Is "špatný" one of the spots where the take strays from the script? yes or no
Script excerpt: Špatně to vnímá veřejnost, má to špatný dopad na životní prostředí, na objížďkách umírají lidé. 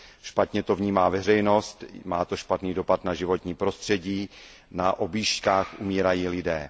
no